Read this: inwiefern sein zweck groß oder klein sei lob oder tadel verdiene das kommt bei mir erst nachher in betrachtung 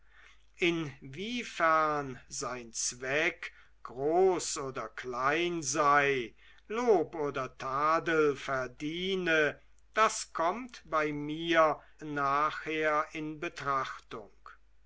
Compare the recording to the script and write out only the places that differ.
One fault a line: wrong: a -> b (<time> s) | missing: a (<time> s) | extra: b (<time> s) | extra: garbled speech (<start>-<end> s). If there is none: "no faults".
missing: erst (11.8 s)